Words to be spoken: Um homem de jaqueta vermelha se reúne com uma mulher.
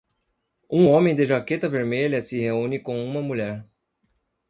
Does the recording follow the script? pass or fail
pass